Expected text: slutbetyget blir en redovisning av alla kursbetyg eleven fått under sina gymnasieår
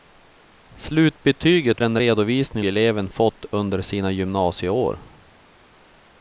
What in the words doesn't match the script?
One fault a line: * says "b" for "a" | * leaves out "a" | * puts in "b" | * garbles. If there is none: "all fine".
* leaves out "blir"
* leaves out "av alla kursbetyg"